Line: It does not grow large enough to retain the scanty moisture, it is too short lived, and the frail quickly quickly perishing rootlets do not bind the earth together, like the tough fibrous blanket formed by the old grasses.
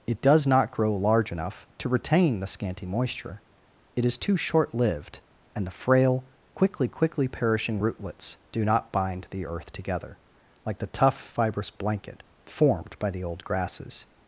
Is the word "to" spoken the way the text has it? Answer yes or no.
yes